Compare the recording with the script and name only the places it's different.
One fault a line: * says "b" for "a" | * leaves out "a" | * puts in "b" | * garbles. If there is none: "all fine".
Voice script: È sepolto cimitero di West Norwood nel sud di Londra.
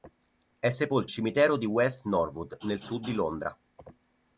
all fine